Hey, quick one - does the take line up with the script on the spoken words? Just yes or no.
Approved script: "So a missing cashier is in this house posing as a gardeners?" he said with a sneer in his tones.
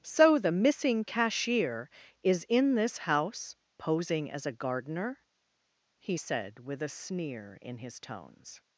no